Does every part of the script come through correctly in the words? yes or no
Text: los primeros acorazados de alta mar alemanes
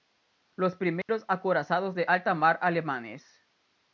yes